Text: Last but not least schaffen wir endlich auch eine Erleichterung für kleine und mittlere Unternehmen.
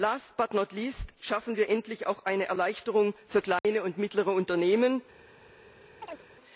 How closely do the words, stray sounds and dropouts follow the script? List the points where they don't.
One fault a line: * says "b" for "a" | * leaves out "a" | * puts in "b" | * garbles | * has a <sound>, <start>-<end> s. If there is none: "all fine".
* has a dropout, 3.6-3.6 s
* has a chirp, 6.0-6.2 s